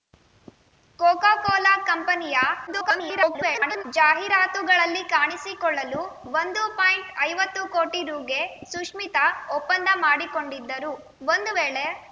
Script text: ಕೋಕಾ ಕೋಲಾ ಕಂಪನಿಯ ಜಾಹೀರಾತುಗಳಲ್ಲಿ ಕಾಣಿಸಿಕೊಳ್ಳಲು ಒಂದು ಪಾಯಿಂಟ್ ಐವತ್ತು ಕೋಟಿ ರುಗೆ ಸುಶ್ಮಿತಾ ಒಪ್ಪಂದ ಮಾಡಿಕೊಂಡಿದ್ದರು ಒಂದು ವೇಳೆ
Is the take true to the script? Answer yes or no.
no